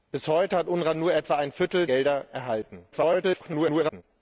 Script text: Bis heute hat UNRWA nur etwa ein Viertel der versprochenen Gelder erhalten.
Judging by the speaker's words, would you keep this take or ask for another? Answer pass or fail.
fail